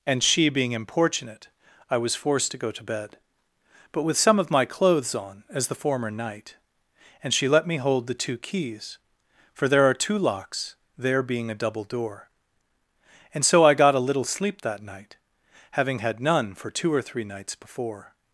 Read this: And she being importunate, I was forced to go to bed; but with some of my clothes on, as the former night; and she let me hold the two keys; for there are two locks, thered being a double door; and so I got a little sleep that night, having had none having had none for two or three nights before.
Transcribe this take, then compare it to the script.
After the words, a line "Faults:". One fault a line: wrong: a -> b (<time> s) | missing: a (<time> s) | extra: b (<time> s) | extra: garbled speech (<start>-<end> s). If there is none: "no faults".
And she being importunate, I was forced to go to bed; but with some of my clothes on, as the former night; and she let me hold the two keys; for there are two locks, there being a double door; and so I got a little sleep that night, having had none for two or three nights before.
Faults:
wrong: thered -> there (11.0 s)
missing: having had none (16.5 s)